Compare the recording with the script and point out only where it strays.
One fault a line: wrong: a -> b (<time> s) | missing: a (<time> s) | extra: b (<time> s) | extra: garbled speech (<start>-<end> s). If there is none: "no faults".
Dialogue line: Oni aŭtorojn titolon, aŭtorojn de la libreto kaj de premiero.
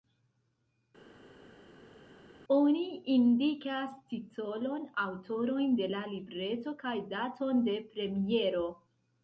wrong: aŭtorojn -> indikas (3.1 s)
extra: daton (7.1 s)